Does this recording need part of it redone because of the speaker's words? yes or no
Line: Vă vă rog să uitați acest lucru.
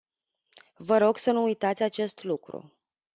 yes